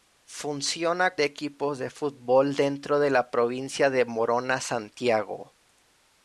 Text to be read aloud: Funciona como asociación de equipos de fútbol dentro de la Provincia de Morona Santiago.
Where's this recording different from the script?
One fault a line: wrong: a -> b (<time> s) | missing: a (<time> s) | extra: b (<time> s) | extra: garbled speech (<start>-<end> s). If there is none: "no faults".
missing: como asociación (1.1 s)